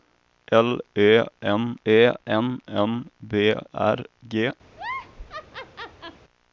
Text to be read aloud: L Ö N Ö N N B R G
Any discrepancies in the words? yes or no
no